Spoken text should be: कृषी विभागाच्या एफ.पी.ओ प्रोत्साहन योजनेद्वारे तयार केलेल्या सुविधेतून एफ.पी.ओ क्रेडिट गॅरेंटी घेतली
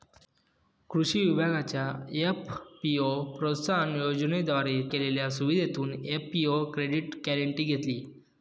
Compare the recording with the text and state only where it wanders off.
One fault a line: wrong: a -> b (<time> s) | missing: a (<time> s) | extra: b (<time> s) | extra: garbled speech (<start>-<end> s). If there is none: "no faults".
missing: तयार (4.8 s)